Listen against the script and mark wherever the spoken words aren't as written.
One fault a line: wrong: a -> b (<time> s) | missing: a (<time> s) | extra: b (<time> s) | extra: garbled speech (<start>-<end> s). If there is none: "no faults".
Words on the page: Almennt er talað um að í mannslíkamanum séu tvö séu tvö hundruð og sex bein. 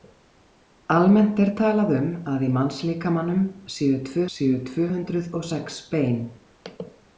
no faults